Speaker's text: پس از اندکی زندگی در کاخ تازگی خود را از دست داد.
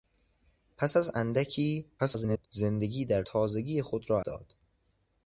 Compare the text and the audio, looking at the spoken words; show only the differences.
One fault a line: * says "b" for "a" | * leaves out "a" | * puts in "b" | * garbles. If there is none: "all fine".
* garbles
* leaves out "کاخ"
* leaves out "از دست"